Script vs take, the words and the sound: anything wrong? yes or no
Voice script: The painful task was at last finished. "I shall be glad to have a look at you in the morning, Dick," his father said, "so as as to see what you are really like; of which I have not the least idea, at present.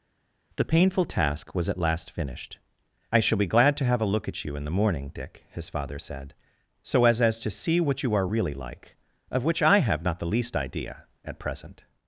no